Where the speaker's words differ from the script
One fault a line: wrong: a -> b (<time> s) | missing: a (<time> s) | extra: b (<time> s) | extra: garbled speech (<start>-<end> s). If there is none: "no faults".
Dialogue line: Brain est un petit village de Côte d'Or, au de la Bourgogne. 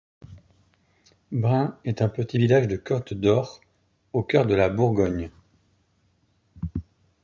extra: cœur (4.2 s)